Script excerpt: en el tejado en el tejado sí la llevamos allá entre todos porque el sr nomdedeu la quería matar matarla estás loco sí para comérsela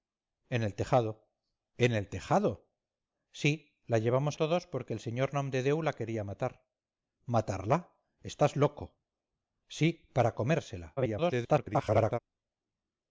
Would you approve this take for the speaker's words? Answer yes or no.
no